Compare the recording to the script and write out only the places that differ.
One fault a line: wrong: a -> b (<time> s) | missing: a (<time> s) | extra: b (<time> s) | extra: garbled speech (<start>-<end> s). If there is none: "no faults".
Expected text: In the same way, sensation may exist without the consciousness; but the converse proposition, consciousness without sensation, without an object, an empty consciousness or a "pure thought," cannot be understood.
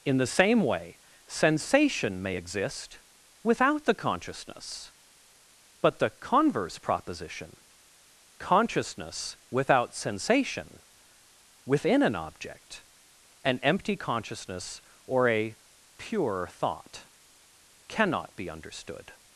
wrong: without -> within (11.6 s)